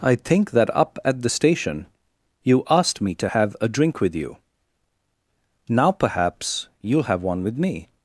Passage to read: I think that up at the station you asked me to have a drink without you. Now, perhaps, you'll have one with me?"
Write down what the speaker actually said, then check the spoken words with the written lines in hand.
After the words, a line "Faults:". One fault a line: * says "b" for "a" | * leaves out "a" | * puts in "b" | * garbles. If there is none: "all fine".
I think that up at the station you asked me to have a drink with you. Now, perhaps, you'll have one with me?"
Faults:
* says "with" for "without"